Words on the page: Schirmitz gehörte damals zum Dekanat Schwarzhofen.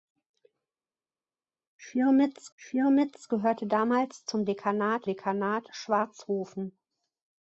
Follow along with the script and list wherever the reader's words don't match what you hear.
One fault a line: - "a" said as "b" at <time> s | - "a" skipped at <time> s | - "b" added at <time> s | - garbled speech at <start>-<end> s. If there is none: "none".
- "schirmitz" added at 2.5 s
- "Dekanat" added at 5.1 s